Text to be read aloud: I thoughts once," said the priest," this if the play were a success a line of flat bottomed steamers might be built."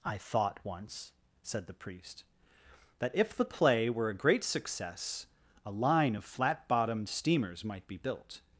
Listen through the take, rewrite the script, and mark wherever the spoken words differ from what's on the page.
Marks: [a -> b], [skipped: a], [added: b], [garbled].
I [thoughts -> thought] once," said the priest," [this -> that] if the play were a [added: great] success a line of flat bottomed steamers might be built."